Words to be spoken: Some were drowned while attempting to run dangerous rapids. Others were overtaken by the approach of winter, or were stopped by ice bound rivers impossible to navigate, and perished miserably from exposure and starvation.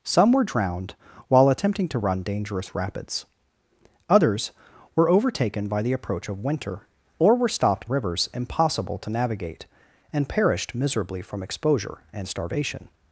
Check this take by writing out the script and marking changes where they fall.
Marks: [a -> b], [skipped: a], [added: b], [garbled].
Some were drowned while attempting to run dangerous rapids. Others were overtaken by the approach of winter, or were stopped [skipped: by ice bound] rivers impossible to navigate, and perished miserably from exposure and starvation.